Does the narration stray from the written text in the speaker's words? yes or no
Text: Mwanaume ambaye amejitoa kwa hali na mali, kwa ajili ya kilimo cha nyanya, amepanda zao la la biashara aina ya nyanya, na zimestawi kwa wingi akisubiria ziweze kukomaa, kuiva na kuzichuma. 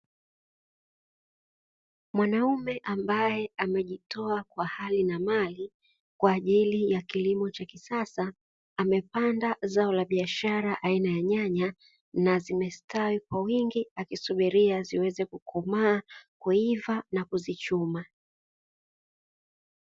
yes